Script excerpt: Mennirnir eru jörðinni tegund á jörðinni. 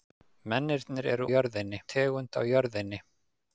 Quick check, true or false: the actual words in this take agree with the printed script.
true